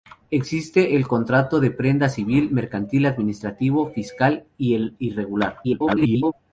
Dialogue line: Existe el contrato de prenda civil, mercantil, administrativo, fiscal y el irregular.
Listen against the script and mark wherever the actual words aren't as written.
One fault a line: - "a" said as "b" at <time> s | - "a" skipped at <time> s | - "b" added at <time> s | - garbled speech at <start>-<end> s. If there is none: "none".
- garbled speech at 5.6-6.3 s